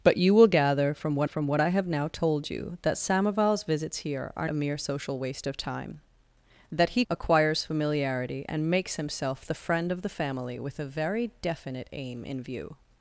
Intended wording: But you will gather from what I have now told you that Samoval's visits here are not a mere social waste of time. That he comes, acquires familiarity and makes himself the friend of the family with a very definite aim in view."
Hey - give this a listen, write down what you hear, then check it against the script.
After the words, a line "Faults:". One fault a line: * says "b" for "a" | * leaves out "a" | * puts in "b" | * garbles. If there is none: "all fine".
But you will gather from what from what I have now told you that Samoval's visits here are a mere social waste of time. That he acquires familiarity and makes himself the friend of the family with a very definite aim in view."
Faults:
* puts in "from what"
* leaves out "not"
* leaves out "comes"